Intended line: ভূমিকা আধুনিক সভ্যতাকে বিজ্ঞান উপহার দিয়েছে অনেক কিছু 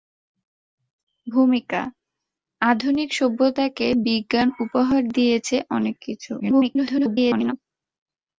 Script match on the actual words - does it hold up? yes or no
no